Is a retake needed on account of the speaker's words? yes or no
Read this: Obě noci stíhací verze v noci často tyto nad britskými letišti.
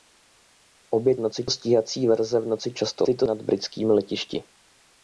no